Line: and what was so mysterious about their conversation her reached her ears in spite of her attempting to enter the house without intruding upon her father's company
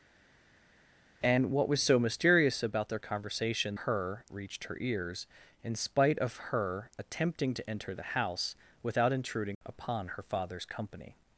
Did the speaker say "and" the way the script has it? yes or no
yes